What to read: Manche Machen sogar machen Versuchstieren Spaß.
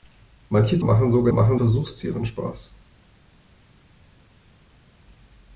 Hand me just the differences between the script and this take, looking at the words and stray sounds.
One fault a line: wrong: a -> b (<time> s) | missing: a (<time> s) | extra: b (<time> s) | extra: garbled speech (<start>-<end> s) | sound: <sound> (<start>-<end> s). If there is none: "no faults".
no faults